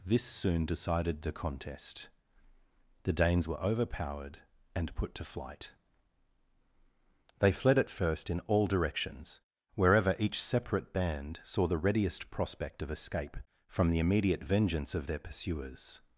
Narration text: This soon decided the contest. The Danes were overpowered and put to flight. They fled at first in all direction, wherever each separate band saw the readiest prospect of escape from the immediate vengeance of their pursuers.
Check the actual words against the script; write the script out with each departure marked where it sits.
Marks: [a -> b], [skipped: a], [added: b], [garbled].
This soon decided the contest. The Danes were overpowered and put to flight. They fled at first in all [direction, -> directions] wherever each separate band saw the readiest prospect of escape from the immediate vengeance of their pursuers.